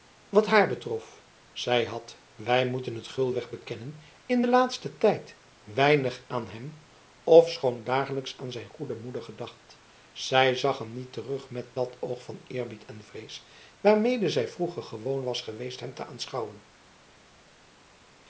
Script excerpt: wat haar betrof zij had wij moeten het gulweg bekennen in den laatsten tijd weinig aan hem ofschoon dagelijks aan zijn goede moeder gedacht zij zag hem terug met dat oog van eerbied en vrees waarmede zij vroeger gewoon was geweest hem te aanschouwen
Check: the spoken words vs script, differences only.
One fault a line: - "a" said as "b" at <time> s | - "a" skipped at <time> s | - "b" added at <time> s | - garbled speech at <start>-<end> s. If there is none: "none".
- "niet" added at 10.9 s